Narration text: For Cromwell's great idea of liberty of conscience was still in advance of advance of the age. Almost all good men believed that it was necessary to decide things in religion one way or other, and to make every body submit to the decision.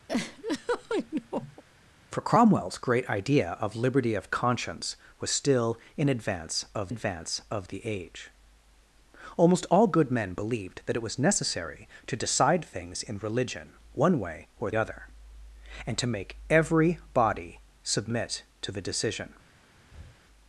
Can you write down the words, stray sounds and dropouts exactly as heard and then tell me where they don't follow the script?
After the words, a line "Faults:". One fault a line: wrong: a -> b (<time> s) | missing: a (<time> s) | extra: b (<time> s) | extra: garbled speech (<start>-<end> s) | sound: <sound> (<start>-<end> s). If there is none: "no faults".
For Cromwell's great idea of liberty of conscience was still in advance of advance of the age. Almost all good men believed that it was necessary to decide things in religion one way or other, and to make every body submit to the decision.
Faults:
sound: laugh (0.1-1.6 s)
sound: breath (19.9-20.2 s)